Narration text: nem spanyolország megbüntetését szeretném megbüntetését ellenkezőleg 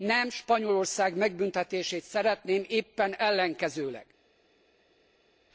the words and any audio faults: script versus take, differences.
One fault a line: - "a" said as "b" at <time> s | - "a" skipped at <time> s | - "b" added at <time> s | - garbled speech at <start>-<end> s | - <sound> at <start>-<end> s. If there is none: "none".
- "megbüntetését" said as "éppen" at 2.7 s